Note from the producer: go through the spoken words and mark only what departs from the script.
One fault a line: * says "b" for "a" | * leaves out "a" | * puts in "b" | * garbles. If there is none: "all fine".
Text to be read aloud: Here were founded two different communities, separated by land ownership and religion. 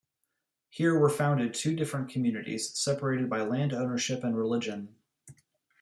all fine